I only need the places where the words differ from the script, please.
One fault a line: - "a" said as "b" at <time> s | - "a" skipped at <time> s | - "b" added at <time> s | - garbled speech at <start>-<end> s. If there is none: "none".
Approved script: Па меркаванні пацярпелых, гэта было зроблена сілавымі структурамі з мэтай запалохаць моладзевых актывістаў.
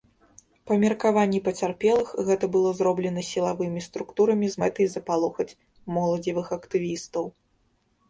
none